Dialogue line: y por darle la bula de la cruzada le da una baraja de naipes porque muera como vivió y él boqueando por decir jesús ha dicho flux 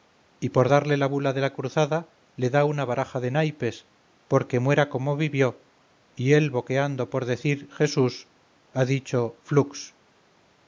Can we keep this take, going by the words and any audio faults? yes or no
yes